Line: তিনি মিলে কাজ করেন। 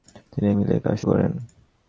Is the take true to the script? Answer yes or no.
yes